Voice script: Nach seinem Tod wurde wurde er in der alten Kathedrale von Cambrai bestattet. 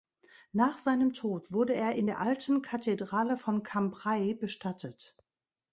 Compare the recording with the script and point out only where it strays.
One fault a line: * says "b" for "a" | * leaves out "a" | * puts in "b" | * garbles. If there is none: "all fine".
* leaves out "wurde"